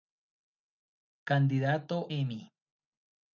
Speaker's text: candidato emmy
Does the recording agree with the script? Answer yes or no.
yes